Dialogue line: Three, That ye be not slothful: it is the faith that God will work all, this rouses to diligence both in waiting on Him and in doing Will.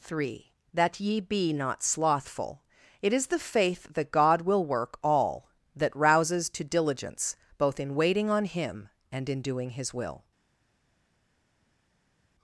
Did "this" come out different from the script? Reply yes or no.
yes